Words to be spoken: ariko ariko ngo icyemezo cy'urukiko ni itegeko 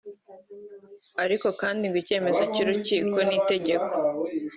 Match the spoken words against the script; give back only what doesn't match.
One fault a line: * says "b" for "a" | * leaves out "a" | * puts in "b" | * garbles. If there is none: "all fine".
* says "kandi" for "ariko"